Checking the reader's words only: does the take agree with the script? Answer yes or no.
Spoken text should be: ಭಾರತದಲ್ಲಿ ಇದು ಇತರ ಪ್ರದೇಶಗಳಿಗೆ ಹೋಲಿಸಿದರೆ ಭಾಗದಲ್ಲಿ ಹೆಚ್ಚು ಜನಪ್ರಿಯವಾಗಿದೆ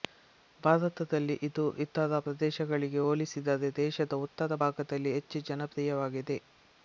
no